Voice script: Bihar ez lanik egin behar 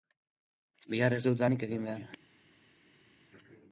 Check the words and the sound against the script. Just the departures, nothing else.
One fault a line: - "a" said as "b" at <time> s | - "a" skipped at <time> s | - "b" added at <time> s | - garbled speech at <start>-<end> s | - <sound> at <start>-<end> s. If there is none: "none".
- "dut" added at 1.3 s